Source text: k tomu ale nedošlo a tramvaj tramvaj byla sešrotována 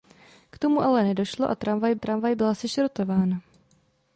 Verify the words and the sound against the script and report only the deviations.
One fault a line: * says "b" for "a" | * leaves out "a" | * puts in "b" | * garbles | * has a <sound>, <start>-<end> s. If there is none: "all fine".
all fine